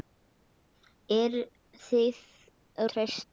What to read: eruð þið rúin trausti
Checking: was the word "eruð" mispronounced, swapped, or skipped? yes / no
no